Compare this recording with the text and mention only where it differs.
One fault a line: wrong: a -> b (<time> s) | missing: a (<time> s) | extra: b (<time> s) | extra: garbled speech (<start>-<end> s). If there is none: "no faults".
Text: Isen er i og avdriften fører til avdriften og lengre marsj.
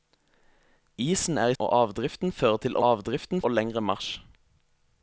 no faults